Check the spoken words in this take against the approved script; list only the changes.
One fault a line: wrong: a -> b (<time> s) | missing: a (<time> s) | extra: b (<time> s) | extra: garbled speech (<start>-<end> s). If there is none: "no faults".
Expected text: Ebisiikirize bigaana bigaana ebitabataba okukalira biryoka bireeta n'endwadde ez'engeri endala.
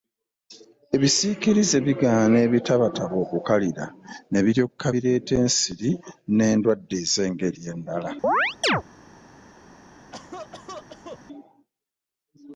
missing: bigaana (2.4 s)
extra: ne (4.3 s)
extra: ensiri (5.4 s)